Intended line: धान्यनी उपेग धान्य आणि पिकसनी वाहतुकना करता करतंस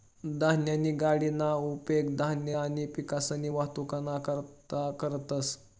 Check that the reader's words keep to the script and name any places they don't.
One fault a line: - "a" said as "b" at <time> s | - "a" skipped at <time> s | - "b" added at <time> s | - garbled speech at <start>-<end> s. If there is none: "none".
- "गाडीना" added at 1.0 s